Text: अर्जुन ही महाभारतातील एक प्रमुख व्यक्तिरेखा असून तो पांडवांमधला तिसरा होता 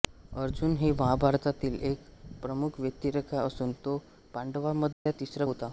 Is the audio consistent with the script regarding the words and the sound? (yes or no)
no